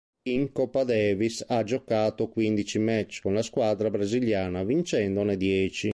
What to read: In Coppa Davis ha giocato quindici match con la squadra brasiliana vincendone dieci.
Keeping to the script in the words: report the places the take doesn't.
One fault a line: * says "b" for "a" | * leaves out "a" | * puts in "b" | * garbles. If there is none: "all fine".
all fine